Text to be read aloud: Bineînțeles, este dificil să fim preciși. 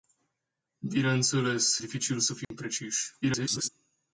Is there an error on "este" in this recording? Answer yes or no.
yes